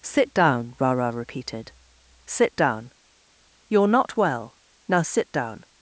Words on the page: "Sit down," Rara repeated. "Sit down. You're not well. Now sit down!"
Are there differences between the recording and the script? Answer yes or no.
no